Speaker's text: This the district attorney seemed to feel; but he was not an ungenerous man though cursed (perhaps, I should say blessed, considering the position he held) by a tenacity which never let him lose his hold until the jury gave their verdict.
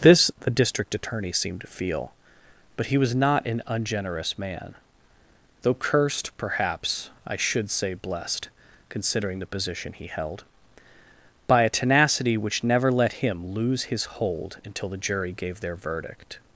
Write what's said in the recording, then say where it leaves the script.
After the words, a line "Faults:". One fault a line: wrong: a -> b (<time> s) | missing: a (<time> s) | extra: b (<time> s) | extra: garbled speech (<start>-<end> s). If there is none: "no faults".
This the district attorney seemed to feel; but he was not an ungenerous man though cursed (perhaps, I should say blessed, considering the position he held) by a tenacity which never let him lose his hold until the jury gave their verdict.
Faults:
no faults